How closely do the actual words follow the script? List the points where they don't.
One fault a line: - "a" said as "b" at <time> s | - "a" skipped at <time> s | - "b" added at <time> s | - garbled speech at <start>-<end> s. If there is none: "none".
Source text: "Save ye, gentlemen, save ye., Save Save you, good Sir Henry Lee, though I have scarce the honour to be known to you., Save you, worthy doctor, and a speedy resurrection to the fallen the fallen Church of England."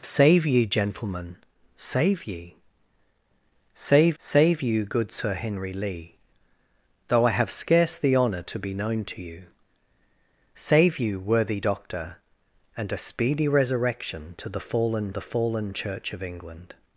none